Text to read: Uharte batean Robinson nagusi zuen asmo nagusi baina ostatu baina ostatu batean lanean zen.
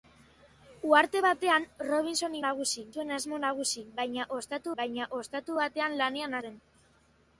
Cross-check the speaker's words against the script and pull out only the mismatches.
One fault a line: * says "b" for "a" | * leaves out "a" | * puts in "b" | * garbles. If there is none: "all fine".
all fine